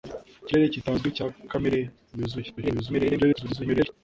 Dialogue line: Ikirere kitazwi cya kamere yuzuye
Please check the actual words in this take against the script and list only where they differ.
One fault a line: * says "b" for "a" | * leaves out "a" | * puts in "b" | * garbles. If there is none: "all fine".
* garbles